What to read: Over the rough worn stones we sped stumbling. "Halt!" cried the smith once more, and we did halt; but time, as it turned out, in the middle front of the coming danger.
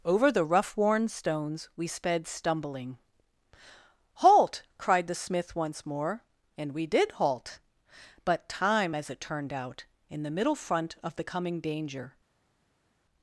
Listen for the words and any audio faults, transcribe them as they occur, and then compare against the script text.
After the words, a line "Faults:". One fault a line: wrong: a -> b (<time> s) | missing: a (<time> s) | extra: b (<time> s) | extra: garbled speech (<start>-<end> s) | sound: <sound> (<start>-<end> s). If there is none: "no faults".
Over the rough worn stones we sped stumbling. "Halt!" cried the smith once more, and we did halt; but time, as it turned out, in the middle front of the coming danger.
Faults:
no faults